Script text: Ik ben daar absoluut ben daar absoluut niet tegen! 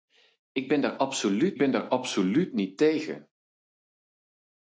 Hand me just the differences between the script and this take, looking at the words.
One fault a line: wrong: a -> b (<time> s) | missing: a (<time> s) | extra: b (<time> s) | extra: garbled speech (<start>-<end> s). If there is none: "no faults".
no faults